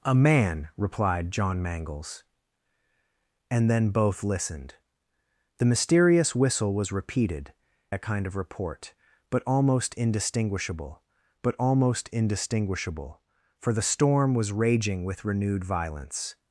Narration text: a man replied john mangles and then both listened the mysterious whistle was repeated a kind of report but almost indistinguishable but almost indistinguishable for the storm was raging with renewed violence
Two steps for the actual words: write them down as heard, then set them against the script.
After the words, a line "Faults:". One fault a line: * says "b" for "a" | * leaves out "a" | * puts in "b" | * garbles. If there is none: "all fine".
a man replied john mangles and then both listened the mysterious whistle was repeated a kind of report but almost indistinguishable but almost indistinguishable for the storm was raging with renewed violence
Faults:
all fine